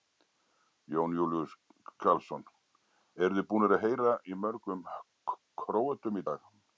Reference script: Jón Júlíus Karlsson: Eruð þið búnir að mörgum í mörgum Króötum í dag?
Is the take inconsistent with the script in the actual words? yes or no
yes